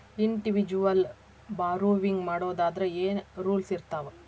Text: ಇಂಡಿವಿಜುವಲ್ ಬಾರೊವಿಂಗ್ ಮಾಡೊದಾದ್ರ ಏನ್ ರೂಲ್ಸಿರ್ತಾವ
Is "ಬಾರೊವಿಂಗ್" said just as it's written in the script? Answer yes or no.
yes